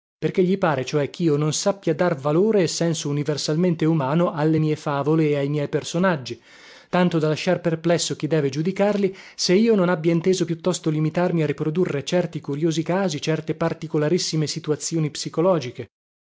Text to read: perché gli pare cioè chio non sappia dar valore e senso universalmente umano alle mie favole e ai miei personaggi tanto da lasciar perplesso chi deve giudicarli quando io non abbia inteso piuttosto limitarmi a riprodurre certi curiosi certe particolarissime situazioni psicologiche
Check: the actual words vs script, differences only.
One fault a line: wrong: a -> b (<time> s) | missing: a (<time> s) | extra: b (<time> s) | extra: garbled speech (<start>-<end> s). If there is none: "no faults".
wrong: quando -> se (9.3 s)
extra: casi (12.8 s)